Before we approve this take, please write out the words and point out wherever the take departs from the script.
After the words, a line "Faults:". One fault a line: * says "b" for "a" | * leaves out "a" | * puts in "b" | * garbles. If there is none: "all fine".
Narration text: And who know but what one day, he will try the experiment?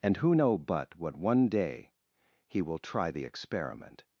And who know but what one day, he will try the experiment?
Faults:
all fine